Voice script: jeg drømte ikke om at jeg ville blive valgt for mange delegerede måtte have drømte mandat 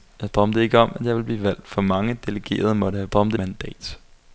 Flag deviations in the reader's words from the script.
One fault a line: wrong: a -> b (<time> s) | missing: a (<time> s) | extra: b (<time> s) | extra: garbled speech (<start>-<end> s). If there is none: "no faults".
no faults